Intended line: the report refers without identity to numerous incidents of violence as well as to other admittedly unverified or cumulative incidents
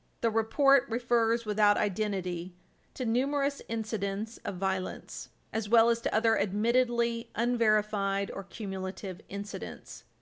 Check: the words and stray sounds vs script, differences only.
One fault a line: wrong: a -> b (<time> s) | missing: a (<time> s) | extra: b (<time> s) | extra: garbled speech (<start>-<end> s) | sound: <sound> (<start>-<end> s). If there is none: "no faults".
no faults